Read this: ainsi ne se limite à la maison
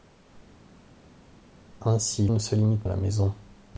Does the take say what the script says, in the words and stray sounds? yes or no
yes